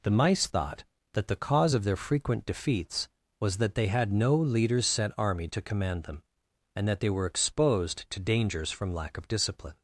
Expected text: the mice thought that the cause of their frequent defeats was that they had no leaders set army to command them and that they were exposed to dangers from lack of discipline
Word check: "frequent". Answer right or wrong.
right